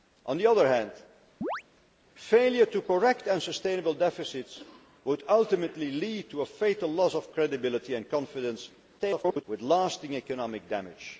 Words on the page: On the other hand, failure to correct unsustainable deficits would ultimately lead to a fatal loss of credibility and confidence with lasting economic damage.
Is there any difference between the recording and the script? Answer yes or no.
yes